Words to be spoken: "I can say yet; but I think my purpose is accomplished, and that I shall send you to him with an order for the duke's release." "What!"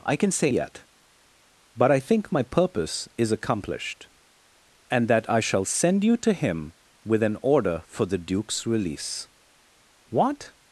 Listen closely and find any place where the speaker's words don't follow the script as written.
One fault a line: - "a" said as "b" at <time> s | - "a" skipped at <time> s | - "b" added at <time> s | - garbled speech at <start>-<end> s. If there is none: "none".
none